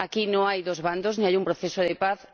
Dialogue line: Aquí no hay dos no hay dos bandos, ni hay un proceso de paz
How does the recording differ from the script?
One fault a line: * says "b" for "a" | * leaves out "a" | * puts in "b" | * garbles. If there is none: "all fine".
* leaves out "no hay dos"